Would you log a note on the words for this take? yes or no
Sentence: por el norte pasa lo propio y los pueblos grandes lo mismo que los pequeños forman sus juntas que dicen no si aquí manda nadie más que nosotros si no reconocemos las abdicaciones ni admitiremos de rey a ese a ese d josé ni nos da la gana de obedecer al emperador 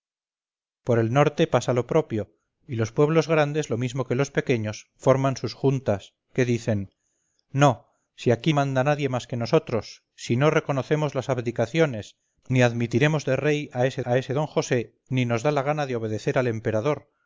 no